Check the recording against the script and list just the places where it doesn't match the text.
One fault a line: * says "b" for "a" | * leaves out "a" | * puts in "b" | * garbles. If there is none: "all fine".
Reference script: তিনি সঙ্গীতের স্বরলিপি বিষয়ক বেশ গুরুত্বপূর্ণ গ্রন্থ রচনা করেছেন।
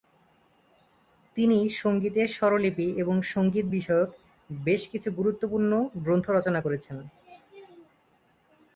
* puts in "এবং সঙ্গীত"
* puts in "কিছু"